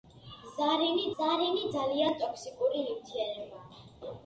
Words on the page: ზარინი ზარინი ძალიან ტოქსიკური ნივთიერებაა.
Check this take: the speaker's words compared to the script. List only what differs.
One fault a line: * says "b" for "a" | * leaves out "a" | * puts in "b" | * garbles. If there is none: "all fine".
all fine